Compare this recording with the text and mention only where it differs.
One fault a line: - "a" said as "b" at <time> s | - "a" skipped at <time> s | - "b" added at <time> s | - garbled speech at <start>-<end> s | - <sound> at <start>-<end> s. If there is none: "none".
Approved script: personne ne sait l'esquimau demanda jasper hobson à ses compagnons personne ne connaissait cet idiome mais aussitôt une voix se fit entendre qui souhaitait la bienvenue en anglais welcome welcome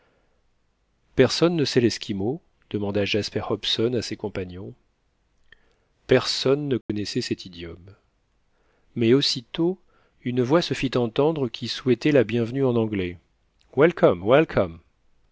- dropout at 6.8-6.9 s